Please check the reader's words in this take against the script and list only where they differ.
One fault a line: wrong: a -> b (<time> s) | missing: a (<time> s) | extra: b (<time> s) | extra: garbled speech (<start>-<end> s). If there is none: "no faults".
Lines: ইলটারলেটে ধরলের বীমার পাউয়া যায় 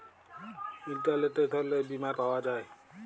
no faults